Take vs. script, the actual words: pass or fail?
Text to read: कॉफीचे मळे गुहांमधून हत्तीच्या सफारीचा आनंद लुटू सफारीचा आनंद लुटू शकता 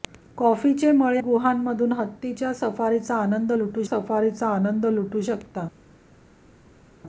pass